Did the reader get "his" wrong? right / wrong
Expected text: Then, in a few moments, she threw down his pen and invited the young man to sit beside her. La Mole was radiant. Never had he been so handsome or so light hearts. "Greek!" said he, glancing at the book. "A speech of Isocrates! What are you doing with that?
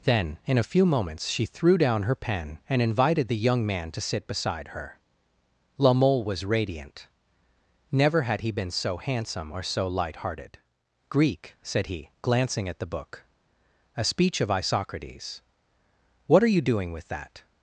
wrong